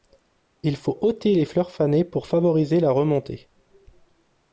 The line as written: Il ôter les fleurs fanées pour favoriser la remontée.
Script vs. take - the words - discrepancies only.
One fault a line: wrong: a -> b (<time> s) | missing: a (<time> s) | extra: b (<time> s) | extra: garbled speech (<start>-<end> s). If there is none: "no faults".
extra: faut (0.8 s)